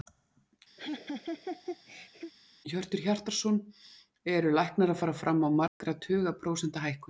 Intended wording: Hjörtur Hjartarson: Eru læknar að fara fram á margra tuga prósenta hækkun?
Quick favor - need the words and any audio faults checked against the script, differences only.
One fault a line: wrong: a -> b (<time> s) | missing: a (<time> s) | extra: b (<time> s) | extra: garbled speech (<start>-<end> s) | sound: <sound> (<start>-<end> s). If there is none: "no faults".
sound: laugh (0.8-2.3 s)
sound: dropout (5.7-5.8 s)